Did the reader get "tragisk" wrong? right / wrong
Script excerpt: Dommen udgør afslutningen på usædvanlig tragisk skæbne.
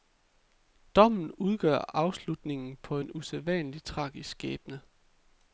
right